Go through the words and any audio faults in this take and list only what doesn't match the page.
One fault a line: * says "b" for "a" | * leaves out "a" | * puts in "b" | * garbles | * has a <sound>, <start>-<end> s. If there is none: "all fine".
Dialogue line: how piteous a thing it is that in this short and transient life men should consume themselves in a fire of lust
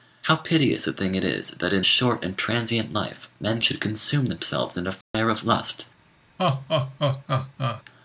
* leaves out "this"
* has a dropout, 5.0-5.1 s
* has a laugh, 6.4-7.8 s